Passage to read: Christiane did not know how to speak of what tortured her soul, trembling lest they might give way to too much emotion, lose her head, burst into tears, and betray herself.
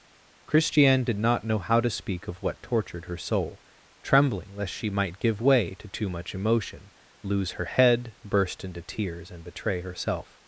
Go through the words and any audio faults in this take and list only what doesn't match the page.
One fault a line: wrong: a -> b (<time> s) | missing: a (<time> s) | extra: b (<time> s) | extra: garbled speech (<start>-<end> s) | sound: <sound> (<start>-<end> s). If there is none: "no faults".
wrong: they -> she (4.7 s)